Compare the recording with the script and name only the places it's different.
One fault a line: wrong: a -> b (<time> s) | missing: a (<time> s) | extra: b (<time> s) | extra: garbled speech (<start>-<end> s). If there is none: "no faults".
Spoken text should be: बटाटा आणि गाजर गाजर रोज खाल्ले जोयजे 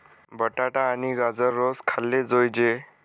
missing: गाजर (1.5 s)